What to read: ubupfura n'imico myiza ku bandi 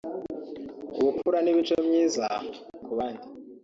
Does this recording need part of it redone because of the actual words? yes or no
no